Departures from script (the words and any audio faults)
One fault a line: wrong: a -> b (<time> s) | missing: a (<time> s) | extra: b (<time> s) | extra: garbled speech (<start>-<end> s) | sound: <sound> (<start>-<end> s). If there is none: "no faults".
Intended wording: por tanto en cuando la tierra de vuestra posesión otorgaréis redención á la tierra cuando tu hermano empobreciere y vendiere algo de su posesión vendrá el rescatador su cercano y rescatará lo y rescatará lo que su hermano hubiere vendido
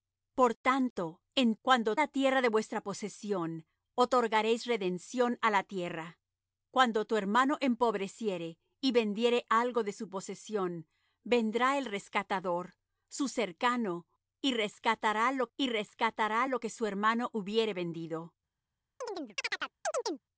sound: chirp (19.0-20.2 s)